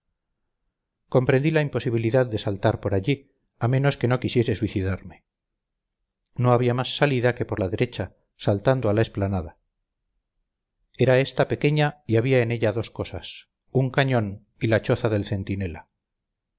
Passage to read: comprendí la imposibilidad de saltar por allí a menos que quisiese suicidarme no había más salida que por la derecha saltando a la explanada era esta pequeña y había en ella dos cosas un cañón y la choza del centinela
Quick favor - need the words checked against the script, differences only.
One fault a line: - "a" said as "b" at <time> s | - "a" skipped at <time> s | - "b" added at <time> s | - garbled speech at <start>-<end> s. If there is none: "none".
- "no" added at 4.1 s